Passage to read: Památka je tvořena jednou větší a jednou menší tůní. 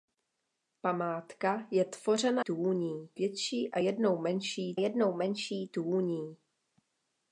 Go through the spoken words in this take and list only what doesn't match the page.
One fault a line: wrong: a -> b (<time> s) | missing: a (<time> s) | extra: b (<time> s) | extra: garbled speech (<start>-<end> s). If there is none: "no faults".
wrong: jednou -> tůní (2.4 s)
extra: jednou menší (4.8 s)